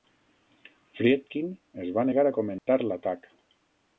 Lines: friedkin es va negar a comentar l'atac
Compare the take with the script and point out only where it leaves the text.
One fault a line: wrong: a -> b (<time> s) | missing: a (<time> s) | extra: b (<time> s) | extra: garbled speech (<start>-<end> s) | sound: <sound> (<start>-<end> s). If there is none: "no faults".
sound: dropout (2.6-2.7 s)